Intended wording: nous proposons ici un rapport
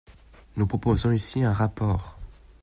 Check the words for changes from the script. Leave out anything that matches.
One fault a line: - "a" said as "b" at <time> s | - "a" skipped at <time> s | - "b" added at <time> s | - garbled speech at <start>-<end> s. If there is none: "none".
none